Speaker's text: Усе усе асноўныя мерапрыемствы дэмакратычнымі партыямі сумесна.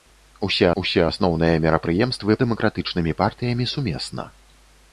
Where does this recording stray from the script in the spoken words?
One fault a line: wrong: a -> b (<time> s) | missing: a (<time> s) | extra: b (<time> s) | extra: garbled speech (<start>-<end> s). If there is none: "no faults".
no faults